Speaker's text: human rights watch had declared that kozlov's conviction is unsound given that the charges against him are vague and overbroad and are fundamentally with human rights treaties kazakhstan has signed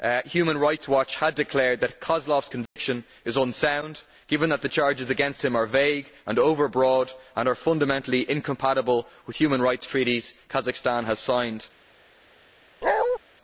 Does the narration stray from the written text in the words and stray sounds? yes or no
yes